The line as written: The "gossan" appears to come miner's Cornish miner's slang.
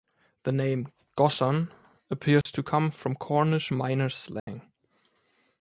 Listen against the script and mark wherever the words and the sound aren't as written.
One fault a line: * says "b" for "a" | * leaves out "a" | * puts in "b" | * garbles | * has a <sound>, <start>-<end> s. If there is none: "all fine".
* puts in "name"
* has a dropout, 2.4-2.5 s
* says "from" for "miner's"
* has a dropout, 4.4-4.5 s